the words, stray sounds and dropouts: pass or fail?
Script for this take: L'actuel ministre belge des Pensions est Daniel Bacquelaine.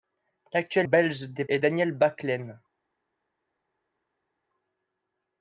fail